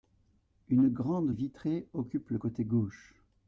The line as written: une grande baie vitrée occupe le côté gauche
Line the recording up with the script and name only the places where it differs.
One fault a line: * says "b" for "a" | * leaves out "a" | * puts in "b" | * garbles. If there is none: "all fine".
* leaves out "baie"